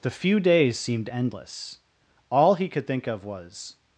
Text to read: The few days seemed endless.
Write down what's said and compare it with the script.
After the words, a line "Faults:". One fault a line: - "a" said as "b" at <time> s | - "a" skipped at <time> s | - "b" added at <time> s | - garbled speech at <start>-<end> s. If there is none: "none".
The few days seemed endless. All he could think of was
Faults:
- "All he could think of was" added at 2.3 s